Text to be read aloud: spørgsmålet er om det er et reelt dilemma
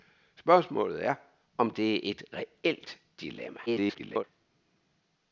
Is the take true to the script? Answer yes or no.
no